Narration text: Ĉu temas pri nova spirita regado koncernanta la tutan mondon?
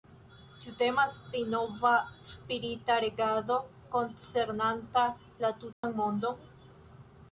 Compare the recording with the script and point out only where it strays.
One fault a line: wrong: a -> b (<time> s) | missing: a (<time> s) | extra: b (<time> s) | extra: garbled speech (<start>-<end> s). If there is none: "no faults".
no faults